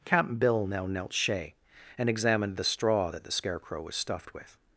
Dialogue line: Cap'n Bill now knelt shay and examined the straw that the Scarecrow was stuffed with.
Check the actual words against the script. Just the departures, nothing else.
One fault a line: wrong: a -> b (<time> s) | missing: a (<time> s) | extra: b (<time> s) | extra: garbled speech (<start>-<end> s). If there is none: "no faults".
no faults